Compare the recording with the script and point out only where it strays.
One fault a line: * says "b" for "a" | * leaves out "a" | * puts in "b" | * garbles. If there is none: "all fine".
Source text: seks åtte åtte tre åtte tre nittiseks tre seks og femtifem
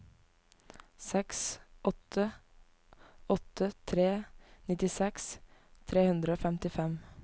* leaves out "åtte tre"
* says "hundre" for "seks"